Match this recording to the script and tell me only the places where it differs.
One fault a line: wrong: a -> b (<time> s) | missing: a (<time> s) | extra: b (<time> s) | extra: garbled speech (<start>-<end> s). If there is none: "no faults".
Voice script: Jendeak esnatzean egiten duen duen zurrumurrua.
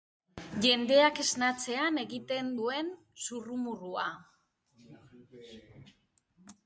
missing: duen (2.9 s)